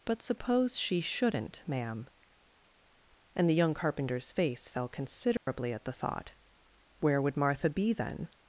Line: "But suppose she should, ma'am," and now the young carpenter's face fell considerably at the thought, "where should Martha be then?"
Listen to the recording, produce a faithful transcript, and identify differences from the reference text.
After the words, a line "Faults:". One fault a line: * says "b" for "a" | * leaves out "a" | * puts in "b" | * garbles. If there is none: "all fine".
"But suppose she shouldn't, ma'am," and the young carpenter's face fell considerably at the thought, "where would Martha be then?"
Faults:
* says "shouldn't" for "should"
* leaves out "now"
* says "would" for "should"